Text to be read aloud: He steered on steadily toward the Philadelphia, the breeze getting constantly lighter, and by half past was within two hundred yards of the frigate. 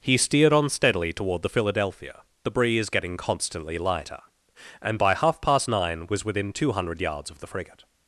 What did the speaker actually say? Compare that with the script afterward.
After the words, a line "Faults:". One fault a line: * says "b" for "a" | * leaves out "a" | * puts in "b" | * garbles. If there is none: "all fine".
He steered on steadily toward the Philadelphia, the breeze getting constantly lighter, and by half past nine was within two hundred yards of the frigate.
Faults:
* puts in "nine"